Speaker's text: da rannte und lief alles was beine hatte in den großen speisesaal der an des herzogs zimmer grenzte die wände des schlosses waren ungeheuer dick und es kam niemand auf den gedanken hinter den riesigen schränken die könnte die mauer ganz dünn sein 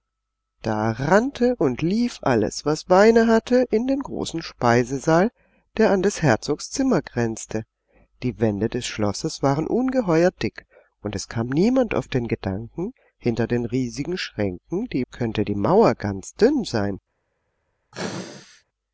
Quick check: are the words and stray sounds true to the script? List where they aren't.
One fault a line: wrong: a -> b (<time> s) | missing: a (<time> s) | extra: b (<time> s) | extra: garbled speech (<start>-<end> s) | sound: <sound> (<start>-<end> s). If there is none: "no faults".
sound: sneeze (17.9-18.6 s)